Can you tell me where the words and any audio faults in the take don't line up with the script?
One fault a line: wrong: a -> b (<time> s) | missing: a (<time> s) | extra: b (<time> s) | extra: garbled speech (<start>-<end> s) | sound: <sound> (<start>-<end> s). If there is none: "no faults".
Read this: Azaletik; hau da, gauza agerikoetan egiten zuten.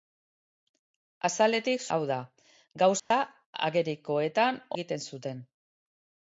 sound: dropout (3.0-3.1 s)